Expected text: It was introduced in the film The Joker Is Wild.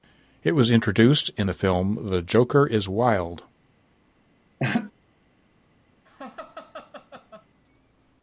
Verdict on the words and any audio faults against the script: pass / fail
fail